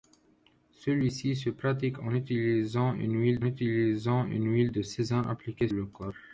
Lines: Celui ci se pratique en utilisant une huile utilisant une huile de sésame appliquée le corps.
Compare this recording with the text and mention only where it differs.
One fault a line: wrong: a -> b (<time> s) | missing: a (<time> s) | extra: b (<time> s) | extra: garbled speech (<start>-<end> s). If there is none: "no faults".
no faults